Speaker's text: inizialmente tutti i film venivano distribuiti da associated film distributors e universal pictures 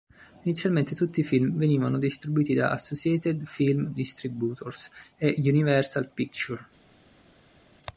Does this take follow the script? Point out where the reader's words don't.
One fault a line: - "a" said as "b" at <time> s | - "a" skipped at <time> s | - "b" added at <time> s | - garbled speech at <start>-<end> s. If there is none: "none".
none